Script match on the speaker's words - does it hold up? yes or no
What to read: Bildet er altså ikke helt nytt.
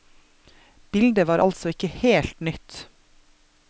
no